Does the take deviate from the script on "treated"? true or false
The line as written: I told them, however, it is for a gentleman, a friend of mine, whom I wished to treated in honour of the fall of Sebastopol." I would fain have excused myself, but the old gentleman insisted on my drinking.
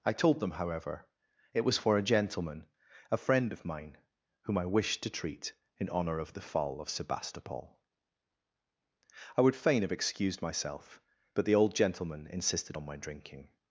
true